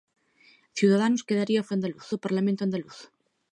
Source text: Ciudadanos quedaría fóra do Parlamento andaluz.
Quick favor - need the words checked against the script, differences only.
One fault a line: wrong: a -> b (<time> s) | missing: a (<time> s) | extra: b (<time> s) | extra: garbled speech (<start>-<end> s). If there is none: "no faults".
wrong: fóra -> andaluz (1.7 s)